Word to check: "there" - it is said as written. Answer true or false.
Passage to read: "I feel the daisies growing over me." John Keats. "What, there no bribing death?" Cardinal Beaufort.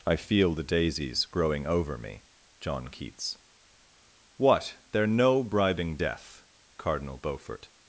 true